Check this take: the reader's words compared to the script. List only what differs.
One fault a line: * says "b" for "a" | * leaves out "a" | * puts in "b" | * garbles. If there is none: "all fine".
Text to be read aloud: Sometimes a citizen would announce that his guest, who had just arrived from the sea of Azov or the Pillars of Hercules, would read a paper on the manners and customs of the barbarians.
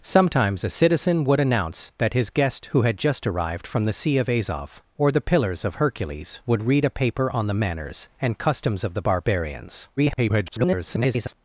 * garbles